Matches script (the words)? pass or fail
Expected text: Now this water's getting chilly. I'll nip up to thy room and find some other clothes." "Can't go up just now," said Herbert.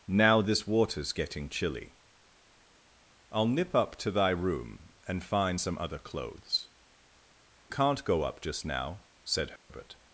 pass